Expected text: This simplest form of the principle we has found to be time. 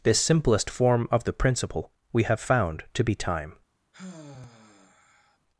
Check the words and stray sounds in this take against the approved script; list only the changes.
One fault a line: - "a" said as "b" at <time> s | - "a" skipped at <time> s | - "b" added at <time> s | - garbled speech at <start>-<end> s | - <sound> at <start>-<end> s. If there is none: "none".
- "has" said as "have" at 2.2 s
- sigh at 3.9-5.4 s